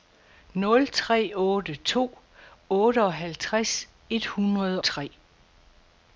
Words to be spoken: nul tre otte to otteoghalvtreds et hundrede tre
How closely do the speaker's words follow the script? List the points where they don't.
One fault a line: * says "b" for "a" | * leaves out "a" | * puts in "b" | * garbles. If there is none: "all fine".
all fine